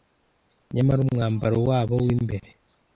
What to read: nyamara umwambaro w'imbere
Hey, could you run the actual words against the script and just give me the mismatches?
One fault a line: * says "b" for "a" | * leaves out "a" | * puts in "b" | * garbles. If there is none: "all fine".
* puts in "wabo"